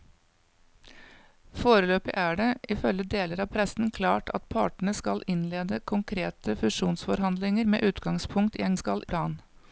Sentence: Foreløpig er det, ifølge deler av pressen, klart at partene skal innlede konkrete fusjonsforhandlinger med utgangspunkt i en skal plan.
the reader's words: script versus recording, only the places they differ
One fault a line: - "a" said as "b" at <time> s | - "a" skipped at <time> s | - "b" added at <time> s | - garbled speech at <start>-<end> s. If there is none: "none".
none